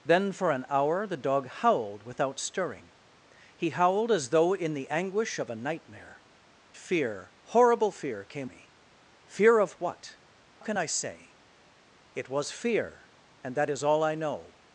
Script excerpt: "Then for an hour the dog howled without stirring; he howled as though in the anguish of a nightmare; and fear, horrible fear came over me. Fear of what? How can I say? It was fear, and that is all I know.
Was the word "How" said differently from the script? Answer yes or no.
yes